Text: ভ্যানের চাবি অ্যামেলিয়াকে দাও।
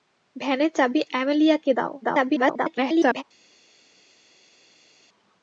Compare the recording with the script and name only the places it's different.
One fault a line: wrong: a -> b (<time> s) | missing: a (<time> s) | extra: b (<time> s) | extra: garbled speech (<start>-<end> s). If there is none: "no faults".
extra: garbled speech (2.0-3.2 s)